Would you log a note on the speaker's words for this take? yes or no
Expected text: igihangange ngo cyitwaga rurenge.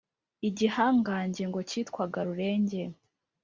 no